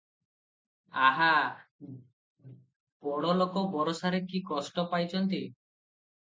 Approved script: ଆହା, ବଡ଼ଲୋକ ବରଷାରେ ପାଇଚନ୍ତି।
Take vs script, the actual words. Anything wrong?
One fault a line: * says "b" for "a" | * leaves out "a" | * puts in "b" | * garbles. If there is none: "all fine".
* puts in "କି କଷ୍ଟ"